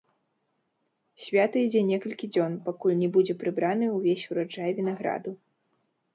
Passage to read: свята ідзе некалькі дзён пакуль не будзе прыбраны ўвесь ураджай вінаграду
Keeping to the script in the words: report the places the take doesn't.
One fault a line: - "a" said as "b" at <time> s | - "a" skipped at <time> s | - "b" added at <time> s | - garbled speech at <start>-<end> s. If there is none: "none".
none